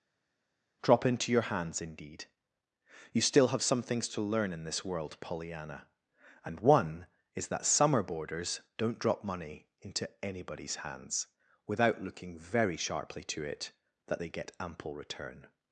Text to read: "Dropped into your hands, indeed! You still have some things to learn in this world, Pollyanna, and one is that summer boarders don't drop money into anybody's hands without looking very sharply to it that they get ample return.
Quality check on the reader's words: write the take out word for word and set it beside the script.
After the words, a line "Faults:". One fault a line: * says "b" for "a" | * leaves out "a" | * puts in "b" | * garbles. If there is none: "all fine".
"Drop into your hands, indeed! You still have some things to learn in this world, Pollyanna, and one is that summer boarders don't drop money into anybody's hands without looking very sharply to it that they get ample return.
Faults:
* says "Drop" for "Dropped"